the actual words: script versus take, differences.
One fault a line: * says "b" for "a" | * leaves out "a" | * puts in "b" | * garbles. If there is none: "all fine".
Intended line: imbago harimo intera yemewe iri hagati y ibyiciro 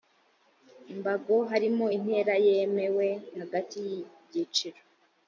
* leaves out "iri"